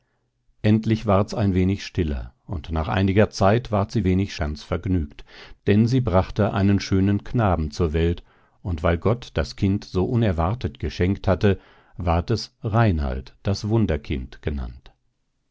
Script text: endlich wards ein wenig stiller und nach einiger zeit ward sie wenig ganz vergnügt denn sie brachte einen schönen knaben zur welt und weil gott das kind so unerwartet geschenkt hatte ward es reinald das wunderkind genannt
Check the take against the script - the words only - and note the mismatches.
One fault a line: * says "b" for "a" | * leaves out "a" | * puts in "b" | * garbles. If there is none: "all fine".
all fine